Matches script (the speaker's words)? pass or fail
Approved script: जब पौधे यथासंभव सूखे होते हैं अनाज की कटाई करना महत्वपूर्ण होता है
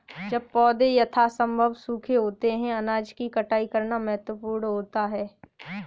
pass